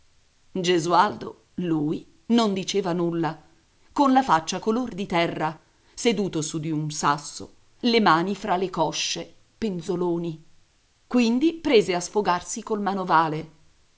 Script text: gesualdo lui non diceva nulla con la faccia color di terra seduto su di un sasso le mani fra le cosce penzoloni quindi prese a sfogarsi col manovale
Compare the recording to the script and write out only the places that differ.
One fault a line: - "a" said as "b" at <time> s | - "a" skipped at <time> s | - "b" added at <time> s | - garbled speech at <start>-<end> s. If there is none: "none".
none